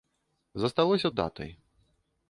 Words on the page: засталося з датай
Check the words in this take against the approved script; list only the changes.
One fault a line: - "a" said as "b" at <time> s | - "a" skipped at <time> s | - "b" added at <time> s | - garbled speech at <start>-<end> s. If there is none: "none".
none